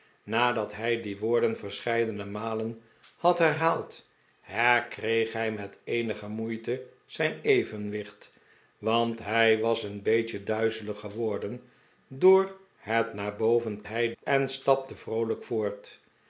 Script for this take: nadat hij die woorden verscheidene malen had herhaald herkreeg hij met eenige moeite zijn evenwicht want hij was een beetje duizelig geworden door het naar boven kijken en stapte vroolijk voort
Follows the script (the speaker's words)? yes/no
no